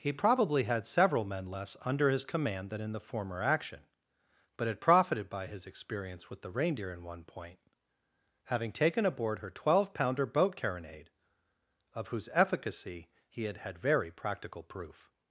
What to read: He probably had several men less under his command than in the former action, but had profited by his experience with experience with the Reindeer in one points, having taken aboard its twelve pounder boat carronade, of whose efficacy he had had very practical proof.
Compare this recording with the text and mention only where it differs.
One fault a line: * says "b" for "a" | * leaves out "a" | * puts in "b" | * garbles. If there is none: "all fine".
* leaves out "experience with"
* says "point" for "points"
* says "her" for "its"